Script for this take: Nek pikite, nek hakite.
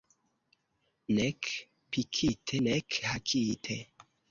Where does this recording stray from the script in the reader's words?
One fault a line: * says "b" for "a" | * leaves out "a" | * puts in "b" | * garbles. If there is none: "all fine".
all fine